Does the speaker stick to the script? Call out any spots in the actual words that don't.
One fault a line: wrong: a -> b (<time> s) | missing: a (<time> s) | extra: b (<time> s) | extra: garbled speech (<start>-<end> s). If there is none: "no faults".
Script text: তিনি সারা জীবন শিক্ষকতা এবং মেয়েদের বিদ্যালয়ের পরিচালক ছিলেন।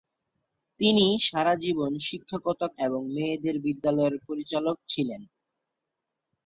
no faults